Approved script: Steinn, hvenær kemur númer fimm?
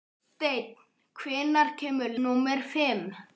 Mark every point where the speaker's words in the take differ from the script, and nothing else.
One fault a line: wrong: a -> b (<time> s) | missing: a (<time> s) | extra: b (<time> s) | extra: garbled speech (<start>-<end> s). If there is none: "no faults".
no faults